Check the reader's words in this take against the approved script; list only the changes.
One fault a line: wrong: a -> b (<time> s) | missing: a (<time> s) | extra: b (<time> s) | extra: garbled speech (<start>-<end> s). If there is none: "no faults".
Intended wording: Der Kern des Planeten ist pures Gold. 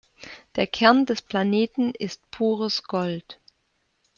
no faults